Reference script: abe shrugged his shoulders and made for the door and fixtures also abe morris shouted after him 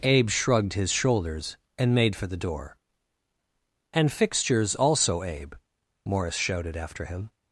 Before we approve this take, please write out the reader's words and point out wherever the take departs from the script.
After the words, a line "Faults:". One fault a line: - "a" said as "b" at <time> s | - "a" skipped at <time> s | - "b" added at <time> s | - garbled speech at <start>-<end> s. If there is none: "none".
abe shrugged his shoulders and made for the door and fixtures also abe morris shouted after him
Faults:
none